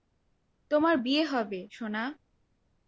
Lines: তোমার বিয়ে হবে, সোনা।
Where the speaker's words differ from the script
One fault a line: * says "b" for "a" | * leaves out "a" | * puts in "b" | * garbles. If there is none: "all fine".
all fine